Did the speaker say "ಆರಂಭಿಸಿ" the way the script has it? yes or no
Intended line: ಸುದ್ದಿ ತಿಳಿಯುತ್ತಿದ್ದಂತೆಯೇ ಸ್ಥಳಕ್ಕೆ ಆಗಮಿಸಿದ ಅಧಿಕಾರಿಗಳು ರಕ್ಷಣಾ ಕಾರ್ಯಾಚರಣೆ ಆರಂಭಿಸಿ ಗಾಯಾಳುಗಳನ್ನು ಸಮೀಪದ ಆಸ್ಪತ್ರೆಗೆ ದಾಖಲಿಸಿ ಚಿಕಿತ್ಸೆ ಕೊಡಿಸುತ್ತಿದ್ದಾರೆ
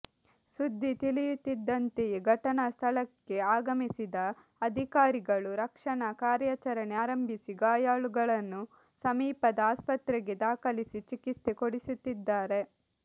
yes